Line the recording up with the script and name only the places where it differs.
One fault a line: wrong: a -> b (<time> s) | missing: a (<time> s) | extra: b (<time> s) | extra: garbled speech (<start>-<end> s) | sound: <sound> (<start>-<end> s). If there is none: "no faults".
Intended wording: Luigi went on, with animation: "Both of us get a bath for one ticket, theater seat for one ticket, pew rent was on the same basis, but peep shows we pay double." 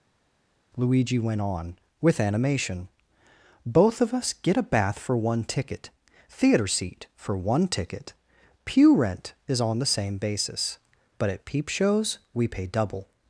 wrong: was -> is (9.5 s)
extra: at (11.3 s)